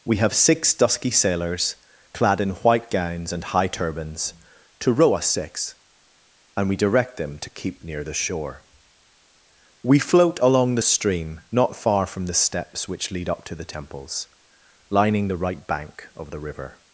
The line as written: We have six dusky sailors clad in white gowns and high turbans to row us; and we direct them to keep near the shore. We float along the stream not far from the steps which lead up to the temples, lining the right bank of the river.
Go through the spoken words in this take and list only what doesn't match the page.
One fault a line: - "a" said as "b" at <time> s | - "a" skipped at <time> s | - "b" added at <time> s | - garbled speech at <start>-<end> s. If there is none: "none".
- "six" added at 5.3 s